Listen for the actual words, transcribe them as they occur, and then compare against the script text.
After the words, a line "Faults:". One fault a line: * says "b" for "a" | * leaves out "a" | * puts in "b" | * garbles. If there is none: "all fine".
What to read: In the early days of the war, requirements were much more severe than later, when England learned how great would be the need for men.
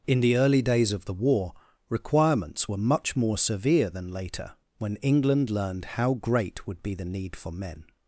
In the early days of the war, requirements were much more severe than later, when England learned how great would be the need for men.
Faults:
all fine